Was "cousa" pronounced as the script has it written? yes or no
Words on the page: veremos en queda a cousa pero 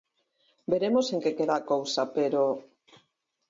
yes